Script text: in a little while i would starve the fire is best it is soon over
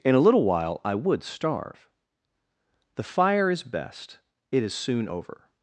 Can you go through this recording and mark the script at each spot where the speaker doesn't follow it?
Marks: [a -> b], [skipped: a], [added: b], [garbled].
in a little while i would starve the fire is best it is soon over